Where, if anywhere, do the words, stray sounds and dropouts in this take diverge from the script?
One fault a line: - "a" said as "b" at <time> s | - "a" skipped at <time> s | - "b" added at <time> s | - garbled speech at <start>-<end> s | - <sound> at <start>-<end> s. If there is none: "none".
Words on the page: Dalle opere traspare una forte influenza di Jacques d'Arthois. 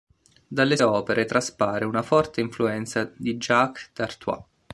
none